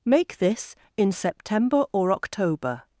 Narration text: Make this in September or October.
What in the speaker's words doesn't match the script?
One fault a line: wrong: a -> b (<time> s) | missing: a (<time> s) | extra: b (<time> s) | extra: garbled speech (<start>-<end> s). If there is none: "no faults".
no faults